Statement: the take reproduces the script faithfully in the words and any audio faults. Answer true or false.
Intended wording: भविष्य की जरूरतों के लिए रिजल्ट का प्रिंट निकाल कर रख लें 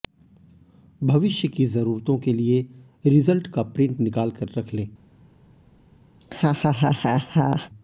false